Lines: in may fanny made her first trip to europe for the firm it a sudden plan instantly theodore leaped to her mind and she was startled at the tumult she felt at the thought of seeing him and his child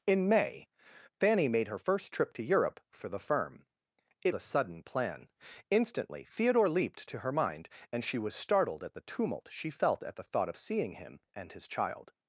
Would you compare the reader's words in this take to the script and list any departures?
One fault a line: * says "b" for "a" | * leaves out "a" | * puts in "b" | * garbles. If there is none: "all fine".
all fine